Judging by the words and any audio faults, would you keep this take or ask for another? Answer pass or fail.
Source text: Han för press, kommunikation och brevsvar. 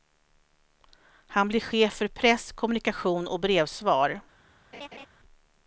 fail